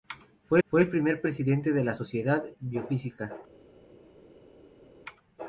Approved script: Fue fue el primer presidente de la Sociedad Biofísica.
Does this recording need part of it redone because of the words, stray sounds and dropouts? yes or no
no